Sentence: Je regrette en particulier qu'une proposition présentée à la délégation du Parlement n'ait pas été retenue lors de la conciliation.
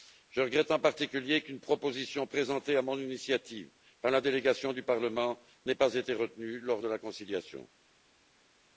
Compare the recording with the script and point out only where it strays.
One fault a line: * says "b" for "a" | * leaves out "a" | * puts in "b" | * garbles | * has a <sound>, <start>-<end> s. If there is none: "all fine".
* puts in "mon initiative par"